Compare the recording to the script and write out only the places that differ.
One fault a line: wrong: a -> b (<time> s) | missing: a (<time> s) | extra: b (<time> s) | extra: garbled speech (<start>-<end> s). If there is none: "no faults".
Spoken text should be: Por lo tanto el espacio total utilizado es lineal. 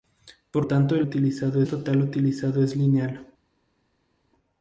missing: lo (0.7 s)
wrong: espacio -> utilizado (1.0 s)